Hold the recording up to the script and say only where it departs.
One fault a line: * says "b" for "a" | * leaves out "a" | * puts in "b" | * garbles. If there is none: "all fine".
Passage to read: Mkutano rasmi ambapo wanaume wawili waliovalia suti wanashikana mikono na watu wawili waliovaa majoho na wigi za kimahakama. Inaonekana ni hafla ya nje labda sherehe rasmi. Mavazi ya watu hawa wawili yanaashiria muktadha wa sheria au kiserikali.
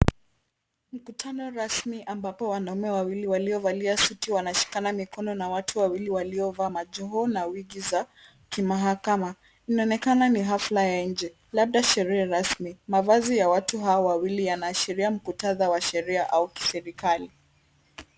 all fine